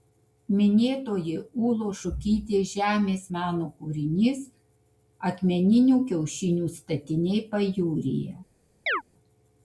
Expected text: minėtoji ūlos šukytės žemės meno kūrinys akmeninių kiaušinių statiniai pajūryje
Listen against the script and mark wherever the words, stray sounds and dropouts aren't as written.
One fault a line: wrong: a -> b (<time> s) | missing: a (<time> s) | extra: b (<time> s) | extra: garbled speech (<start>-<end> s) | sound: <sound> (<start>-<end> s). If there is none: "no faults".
sound: chirp (8.9-9.0 s)